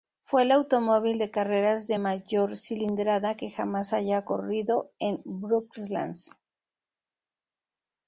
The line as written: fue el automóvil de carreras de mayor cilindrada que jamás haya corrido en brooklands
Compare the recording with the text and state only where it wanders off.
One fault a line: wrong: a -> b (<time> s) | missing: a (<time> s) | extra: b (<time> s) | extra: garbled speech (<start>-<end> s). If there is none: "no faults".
no faults